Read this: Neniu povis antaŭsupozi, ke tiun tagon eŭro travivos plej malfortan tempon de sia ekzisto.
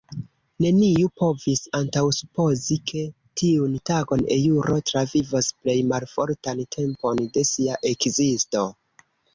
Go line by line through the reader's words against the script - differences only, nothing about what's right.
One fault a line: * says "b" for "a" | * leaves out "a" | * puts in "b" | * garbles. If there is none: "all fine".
all fine